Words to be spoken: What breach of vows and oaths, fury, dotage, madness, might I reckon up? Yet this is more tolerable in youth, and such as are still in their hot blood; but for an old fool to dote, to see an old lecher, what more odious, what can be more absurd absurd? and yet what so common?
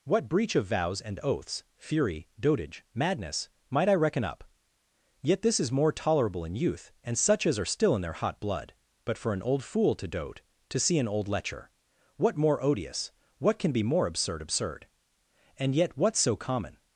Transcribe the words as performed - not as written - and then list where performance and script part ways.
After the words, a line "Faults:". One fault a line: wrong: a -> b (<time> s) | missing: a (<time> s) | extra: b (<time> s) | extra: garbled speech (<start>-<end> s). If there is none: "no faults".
What breach of vows and oaths, fury, dotage, madness, might I reckon up? Yet this is more tolerable in youth, and such as are still in their hot blood; but for an old fool to dote, to see an old lecher, what more odious, what can be more absurd absurd? and yet what so common?
Faults:
no faults